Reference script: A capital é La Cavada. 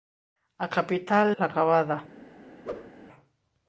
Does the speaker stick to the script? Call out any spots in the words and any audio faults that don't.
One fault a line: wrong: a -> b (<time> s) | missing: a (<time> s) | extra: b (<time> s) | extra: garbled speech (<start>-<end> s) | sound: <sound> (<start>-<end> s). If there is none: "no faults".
missing: é (1.4 s)
sound: whoosh (2.6-2.9 s)